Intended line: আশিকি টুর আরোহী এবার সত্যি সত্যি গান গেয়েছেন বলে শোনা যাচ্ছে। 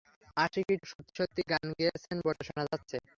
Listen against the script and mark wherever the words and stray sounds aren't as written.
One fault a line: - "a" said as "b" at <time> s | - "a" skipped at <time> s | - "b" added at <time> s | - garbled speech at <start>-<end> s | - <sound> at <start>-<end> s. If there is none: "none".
- "টুর আরোহী এবার" skipped at 0.8 s
- dropout at 2.3-2.4 s